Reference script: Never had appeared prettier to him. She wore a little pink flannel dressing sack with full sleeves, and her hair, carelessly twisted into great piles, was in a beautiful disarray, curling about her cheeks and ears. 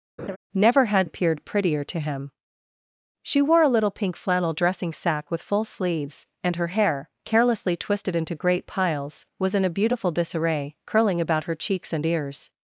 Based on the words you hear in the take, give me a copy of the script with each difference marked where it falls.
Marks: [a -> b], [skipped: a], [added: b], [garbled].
Never had appeared prettier to him. She wore a little pink flannel dressing sack with full sleeves, and her hair, carelessly twisted into great piles, was in a beautiful disarray, curling about her cheeks and ears.